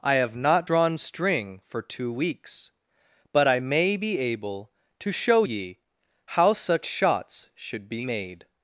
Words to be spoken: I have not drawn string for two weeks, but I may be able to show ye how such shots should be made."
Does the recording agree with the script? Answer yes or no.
yes